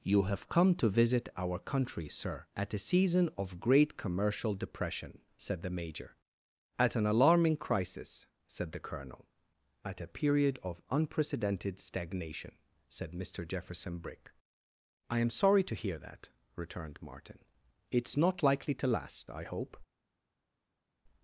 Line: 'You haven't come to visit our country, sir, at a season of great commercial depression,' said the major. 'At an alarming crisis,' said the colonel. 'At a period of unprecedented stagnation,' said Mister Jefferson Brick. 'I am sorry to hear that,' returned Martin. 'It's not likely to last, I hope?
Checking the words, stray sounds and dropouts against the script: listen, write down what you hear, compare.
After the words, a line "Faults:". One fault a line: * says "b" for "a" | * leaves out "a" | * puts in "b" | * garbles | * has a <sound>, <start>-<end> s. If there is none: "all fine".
'You have come to visit our country, sir, at a season of great commercial depression,' said the major. 'At an alarming crisis,' said the colonel. 'At a period of unprecedented stagnation,' said Mister Jefferson Brick. 'I am sorry to hear that,' returned Martin. 'It's not likely to last, I hope?
Faults:
* says "have" for "haven't"